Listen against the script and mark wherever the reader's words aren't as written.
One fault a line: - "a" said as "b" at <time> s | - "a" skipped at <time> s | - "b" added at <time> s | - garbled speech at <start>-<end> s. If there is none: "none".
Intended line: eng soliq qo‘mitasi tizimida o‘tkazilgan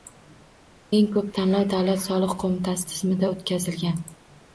- "ko‘p tanlov davlat" added at 1.1 s